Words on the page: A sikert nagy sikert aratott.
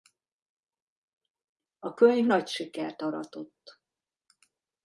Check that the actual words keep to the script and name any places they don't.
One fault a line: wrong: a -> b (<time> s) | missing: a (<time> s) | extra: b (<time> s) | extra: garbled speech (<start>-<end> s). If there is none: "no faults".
wrong: sikert -> könyv (1.9 s)